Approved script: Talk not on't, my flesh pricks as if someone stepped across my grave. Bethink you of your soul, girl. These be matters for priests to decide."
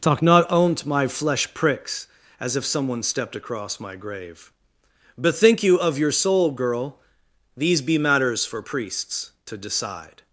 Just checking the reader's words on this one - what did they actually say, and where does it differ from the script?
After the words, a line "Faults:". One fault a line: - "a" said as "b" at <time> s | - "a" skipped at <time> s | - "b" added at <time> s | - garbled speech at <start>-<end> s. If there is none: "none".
Talk not on't, my flesh pricks as if someone stepped across my grave. Bethink you of your soul, girl. These be matters for priests to decide."
Faults:
none